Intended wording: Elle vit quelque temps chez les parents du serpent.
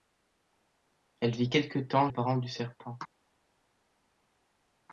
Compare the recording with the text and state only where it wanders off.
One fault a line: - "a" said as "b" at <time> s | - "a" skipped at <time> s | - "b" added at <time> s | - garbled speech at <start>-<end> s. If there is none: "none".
- "chez" skipped at 2.1 s